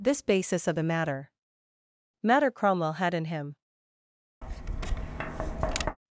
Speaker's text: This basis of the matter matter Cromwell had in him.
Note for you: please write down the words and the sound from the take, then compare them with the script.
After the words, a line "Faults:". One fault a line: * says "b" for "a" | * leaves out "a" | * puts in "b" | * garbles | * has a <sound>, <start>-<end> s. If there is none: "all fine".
This basis of the matter matter Cromwell had in him.
Faults:
* has a tap, 4.4-6.0 s